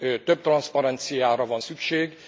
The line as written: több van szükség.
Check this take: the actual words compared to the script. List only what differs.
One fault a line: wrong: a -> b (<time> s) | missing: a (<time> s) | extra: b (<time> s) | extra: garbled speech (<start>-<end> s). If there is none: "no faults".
extra: transzparenciára (0.4 s)